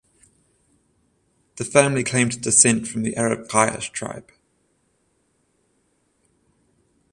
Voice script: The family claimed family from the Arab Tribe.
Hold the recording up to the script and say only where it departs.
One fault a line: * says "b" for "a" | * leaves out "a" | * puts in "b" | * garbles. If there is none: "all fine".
* says "descent" for "family"
* puts in "Quraysh"